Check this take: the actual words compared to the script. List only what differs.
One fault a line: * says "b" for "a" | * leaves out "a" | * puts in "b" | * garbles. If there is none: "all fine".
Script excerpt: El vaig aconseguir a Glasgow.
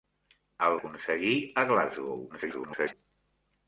* leaves out "vaig"
* garbles